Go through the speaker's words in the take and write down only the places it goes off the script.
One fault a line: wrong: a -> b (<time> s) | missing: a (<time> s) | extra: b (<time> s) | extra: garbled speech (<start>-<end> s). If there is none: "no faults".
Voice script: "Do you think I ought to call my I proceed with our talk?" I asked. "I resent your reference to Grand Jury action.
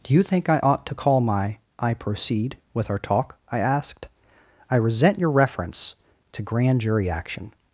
no faults